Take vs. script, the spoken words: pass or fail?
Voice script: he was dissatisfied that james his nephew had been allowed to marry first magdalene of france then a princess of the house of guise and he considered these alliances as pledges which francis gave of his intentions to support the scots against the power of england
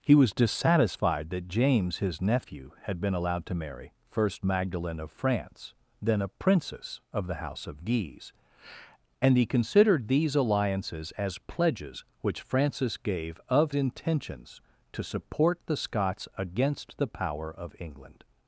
fail